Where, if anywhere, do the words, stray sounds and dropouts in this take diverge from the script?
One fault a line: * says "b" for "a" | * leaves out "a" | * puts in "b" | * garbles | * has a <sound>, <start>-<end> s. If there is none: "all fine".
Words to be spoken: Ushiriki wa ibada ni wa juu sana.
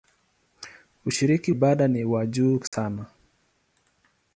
* leaves out "wa"
* has a dropout, 2.7-2.7 s